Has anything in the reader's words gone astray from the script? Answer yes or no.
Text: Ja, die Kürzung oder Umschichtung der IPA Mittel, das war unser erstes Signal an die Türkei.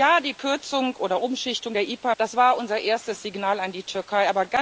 yes